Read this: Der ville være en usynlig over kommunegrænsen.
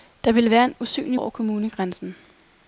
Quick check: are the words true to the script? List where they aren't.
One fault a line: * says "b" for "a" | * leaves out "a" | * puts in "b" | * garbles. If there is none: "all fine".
all fine